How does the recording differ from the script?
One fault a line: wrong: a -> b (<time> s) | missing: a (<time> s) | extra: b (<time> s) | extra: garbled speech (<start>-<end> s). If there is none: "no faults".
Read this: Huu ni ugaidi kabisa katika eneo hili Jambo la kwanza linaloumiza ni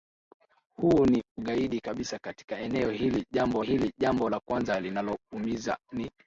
extra: hili Jambo (3.6 s)